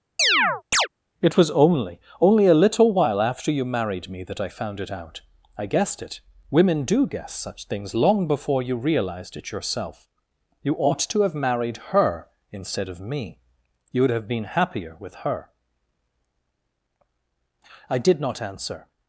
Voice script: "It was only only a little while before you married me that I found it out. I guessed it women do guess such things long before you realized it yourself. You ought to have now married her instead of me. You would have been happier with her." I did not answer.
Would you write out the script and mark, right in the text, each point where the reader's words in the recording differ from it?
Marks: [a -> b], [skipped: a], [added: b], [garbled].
"It was only only a little while [before -> after] you married me that I found it out. I guessed it women do guess such things long before you realized it yourself. You ought to have [skipped: now] married her instead of me. You would have been happier with her." I did not answer.